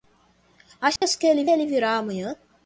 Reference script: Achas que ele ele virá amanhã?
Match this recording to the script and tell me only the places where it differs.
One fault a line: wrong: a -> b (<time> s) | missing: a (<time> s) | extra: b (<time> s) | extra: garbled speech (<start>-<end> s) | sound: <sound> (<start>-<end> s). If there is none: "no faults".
sound: dropout (1.0-1.0 s)